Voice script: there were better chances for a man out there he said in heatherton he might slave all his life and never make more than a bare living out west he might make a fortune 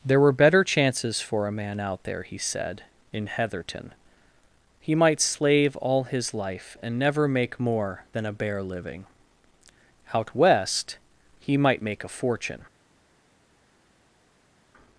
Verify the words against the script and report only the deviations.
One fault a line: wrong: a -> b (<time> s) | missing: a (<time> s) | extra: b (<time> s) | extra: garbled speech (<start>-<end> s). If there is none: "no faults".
no faults